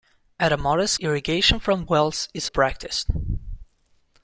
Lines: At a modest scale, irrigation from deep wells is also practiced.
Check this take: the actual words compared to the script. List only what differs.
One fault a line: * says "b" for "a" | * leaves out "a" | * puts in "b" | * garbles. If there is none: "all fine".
* leaves out "scale"
* leaves out "deep"
* leaves out "also"